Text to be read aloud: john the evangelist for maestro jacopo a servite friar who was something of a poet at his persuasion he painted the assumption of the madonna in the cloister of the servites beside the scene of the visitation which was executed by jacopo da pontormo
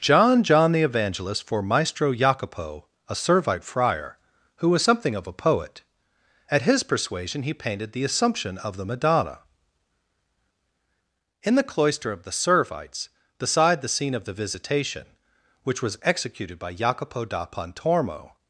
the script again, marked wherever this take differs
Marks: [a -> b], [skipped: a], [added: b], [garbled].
john [added: john] the evangelist for maestro jacopo a servite friar who was something of a poet at his persuasion he painted the assumption of the madonna in the cloister of the servites beside the scene of the visitation which was executed by jacopo da pontormo